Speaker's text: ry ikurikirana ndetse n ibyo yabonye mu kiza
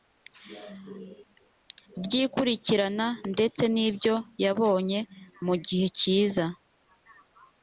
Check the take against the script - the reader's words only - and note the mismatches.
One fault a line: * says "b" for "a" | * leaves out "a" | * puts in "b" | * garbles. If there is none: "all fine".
* puts in "gihe"